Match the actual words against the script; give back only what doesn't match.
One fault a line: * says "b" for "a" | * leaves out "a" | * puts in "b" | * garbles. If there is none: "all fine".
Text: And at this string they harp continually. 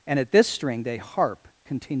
all fine